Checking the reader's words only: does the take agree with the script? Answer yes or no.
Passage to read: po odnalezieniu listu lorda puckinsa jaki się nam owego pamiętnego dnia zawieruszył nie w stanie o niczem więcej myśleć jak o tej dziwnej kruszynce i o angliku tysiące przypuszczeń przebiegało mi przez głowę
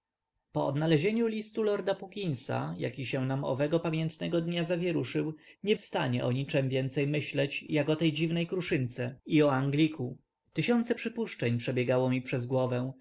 yes